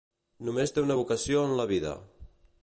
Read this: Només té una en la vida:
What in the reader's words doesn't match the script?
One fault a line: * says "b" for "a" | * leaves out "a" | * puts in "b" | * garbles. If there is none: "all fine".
* puts in "vocació"